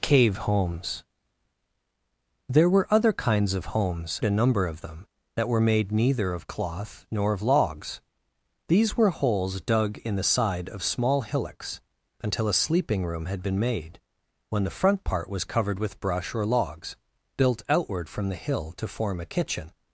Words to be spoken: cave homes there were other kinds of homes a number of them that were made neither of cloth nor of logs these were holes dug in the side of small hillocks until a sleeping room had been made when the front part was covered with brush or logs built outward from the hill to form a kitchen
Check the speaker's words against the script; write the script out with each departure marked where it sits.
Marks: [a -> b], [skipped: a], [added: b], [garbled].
cave homes there were other kinds of homes a number of them that were made neither of cloth nor of logs these were holes dug in the side of small hillocks until a sleeping room had been made when the front part was covered with brush or logs built outward from the hill to form a kitchen